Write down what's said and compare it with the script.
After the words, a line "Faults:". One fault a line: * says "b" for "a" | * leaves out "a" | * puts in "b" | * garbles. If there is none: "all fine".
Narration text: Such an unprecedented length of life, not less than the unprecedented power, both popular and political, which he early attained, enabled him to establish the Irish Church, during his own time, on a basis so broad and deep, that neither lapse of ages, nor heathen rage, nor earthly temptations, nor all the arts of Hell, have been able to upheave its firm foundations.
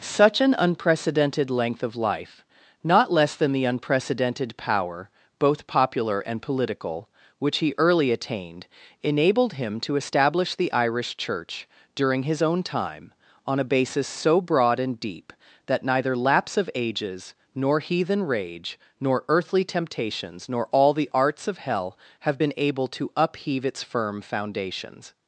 Such an unprecedented length of life, not less than the unprecedented power, both popular and political, which he early attained, enabled him to establish the Irish Church, during his own time, on a basis so broad and deep, that neither lapse of ages, nor heathen rage, nor earthly temptations, nor all the arts of Hell, have been able to upheave its firm foundations.
Faults:
all fine